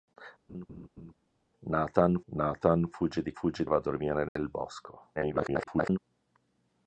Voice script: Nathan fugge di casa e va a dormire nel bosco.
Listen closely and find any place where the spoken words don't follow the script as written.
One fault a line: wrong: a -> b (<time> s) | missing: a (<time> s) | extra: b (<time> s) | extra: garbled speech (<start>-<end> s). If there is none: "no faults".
extra: nathan (2.3 s)
wrong: casa -> fugge (3.3 s)
extra: garbled speech (5.1-6.0 s)